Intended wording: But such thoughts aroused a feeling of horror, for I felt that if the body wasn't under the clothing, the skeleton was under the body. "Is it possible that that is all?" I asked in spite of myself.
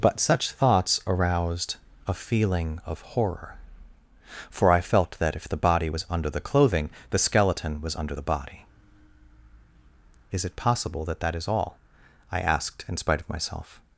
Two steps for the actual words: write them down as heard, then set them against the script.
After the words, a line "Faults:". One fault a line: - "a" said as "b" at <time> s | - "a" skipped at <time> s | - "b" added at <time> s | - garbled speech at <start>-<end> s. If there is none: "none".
But such thoughts aroused a feeling of horror, for I felt that if the body was under the clothing, the skeleton was under the body. "Is it possible that that is all?" I asked in spite of myself.
Faults:
- "wasn't" said as "was" at 5.9 s